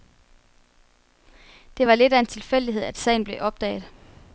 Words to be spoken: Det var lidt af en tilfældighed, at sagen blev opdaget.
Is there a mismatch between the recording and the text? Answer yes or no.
no